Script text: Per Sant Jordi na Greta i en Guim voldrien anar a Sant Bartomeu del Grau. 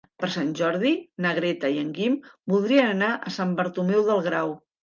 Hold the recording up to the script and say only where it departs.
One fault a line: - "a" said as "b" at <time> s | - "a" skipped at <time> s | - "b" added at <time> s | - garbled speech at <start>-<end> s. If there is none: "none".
none